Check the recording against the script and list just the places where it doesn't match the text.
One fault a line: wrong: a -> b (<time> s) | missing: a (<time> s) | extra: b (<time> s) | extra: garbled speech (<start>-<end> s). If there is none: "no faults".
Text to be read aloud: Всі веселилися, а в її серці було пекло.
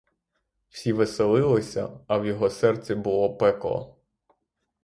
wrong: її -> його (2.2 s)